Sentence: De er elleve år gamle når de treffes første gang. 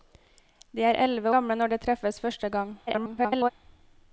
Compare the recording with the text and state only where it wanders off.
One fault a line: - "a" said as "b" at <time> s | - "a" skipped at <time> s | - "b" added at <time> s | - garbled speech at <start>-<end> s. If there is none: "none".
- "år" skipped at 1.3 s
- garbled speech at 2.9-3.5 s